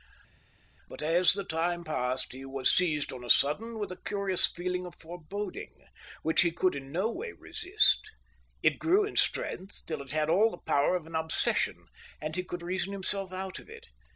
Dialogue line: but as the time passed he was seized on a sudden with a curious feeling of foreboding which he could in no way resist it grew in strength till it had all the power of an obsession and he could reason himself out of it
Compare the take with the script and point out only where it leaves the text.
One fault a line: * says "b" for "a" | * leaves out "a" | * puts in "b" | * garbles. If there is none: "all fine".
all fine